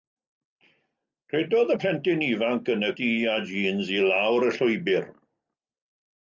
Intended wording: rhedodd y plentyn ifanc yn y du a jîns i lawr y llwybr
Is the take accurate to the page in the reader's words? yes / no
yes